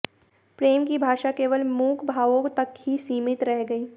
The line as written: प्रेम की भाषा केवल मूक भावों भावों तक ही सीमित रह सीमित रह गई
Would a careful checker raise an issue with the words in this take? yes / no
yes